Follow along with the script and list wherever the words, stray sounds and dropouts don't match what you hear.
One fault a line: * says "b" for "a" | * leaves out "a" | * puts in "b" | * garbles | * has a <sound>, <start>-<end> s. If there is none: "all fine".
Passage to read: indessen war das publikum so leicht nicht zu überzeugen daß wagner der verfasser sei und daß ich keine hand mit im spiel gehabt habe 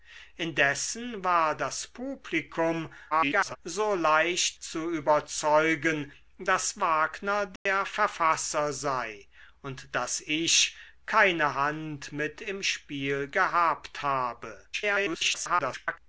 * garbles
* leaves out "nicht"
* has a dropout, 7.6-7.7 s
* garbles